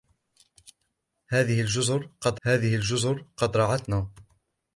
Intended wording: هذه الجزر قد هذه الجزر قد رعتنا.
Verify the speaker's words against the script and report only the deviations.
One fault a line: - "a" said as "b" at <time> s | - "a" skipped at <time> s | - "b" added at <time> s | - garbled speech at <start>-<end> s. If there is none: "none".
none